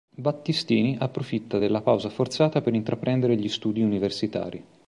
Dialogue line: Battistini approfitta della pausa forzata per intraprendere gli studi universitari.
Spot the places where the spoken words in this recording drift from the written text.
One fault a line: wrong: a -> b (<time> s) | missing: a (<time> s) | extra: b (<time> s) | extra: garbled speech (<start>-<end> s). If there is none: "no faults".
no faults